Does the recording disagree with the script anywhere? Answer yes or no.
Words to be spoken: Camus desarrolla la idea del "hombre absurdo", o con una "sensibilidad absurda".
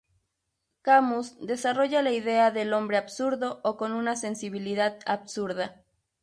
no